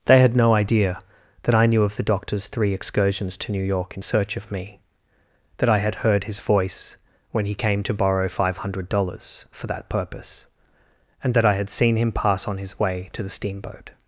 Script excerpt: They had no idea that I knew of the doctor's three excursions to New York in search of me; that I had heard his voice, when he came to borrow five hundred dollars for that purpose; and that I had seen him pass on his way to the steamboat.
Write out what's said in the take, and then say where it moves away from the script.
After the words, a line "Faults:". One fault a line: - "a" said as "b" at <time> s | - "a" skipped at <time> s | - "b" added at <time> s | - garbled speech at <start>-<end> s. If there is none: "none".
They had no idea that I knew of the doctor's three excursions to New York in search of me; that I had heard his voice, when he came to borrow five hundred dollars for that purpose; and that I had seen him pass on his way to the steamboat.
Faults:
none